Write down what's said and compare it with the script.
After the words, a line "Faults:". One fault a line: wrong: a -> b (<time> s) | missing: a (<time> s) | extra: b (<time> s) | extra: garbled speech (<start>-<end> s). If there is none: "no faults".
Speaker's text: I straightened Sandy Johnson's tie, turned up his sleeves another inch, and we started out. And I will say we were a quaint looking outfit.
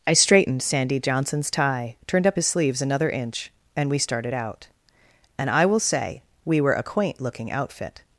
I straightened Sandy Johnson's tie, turned up his sleeves another inch, and we started out. And I will say we were a quaint looking outfit.
Faults:
no faults